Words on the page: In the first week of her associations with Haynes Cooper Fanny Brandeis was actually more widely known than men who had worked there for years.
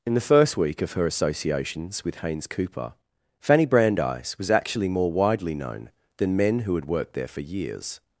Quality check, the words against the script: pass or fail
pass